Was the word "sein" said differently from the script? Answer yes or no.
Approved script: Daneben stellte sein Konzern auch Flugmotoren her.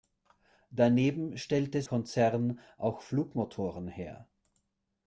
yes